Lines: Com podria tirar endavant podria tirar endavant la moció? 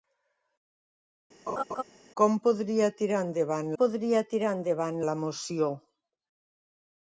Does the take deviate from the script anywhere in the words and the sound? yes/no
yes